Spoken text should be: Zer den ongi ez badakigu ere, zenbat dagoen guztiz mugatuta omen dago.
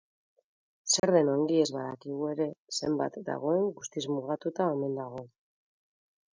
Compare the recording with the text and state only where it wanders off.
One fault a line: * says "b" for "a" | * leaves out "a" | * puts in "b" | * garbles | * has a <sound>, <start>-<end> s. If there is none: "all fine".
* has a dropout, 1.0-1.0 s